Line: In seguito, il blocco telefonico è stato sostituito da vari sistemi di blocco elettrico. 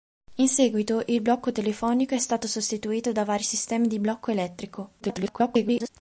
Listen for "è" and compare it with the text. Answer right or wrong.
right